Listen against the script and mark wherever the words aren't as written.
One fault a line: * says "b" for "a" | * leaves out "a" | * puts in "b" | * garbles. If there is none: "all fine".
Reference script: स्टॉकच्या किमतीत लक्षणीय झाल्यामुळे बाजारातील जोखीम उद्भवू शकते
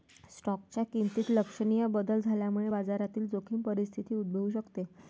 * puts in "बदल"
* puts in "परिस्थिती"